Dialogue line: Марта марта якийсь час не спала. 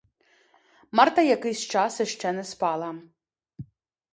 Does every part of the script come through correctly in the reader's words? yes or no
no